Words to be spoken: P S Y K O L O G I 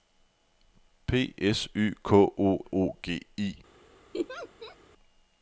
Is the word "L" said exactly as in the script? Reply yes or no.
no